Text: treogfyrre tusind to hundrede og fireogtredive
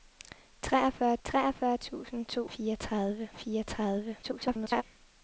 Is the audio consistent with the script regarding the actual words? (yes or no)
no